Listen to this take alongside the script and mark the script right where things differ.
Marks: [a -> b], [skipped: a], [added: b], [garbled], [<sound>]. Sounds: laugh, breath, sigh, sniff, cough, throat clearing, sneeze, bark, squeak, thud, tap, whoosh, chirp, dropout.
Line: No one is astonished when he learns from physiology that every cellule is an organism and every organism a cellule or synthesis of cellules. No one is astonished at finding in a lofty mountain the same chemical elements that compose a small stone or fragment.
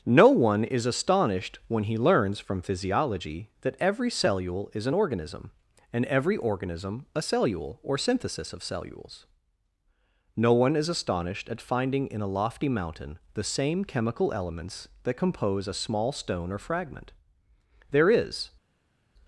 No one is astonished when he learns from physiology that every cellule is an organism and every organism a cellule or synthesis of cellules. No one is astonished at finding in a lofty mountain the same chemical elements that compose a small stone or fragment. [added: There is]